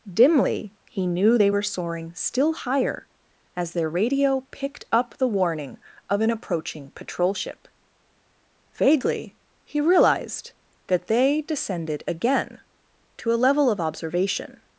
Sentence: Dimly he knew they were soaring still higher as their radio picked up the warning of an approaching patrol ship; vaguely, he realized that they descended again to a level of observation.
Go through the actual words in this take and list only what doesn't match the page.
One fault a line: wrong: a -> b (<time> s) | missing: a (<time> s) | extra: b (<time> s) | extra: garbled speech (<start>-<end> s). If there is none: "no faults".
no faults